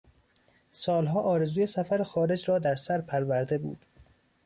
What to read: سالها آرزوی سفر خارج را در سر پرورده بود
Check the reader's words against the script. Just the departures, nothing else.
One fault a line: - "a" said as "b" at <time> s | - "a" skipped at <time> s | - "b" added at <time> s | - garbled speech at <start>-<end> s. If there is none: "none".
none